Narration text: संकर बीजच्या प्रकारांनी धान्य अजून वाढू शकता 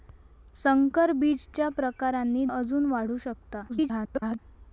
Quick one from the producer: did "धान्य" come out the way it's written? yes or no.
no